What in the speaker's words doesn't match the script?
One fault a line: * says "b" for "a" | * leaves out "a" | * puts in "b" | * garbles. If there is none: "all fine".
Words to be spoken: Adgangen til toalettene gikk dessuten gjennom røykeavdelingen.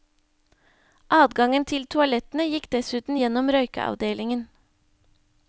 all fine